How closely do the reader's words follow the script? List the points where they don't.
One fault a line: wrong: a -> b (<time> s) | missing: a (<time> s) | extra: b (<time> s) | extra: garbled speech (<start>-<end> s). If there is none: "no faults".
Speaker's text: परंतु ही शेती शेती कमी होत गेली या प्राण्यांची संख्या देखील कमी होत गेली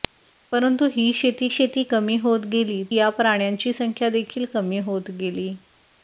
no faults